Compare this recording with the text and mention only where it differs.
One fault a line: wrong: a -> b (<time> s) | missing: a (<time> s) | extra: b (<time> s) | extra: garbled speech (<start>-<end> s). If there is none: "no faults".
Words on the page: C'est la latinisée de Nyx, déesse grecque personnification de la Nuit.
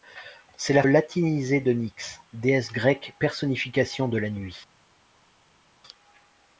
no faults